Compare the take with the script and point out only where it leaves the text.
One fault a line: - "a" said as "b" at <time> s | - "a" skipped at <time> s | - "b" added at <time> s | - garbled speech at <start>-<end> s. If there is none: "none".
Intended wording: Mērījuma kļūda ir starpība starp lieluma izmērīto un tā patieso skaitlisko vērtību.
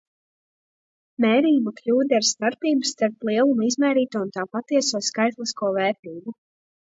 none